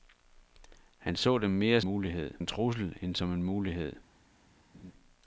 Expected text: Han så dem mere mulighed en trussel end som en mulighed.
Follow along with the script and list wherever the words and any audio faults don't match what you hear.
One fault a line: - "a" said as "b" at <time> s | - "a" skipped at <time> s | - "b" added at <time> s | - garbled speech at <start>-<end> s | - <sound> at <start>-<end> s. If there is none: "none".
- laugh at 4.7-4.9 s